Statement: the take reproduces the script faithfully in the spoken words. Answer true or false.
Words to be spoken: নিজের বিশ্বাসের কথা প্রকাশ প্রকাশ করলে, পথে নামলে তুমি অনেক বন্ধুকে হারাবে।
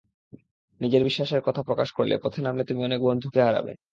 false